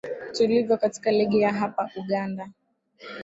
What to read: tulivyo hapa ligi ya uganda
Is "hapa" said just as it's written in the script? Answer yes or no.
no